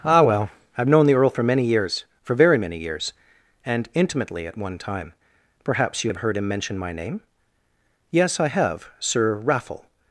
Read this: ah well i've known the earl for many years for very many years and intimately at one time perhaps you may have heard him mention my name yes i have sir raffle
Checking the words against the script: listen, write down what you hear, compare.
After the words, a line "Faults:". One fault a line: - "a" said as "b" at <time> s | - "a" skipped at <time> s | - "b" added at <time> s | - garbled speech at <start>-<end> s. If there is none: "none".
ah well i've known the earl for many years for very many years and intimately at one time perhaps you have heard him mention my name yes i have sir raffle
Faults:
- "may" skipped at 6.1 s